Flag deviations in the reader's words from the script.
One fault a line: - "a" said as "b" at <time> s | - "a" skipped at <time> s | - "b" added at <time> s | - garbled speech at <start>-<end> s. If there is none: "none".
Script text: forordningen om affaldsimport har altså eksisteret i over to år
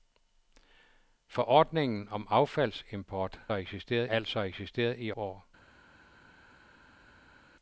- "har" said as "eksisteret" at 3.5 s
- "over to" skipped at 5.1 s